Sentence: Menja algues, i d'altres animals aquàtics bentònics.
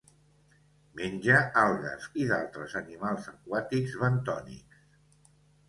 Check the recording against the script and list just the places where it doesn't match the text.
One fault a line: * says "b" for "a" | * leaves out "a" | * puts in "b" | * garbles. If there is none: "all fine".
all fine